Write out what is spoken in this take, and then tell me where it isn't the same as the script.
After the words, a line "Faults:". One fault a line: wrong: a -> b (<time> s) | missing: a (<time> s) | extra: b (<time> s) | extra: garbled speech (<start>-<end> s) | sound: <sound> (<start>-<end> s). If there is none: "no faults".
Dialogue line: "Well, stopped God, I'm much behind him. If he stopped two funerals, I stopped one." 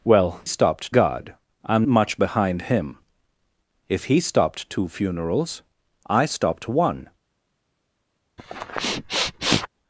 "Well, stopped God, I'm much behind him. If he stopped two funerals, I stopped one."
Faults:
sound: sniff (8.4-9.7 s)